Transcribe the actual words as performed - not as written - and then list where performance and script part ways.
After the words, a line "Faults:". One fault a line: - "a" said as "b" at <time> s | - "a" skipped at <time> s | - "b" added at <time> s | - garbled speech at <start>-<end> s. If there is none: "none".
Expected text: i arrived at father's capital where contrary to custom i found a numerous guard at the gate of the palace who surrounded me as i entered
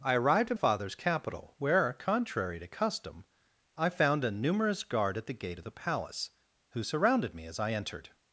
i arrived at father's capital where contrary to custom i found a numerous guard at the gate of the palace who surrounded me as i entered
Faults:
none